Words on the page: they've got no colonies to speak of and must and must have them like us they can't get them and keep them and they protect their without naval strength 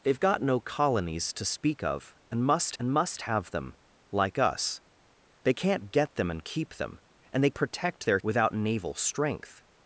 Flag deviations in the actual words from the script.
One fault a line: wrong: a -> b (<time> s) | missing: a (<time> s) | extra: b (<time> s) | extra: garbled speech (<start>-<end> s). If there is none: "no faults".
no faults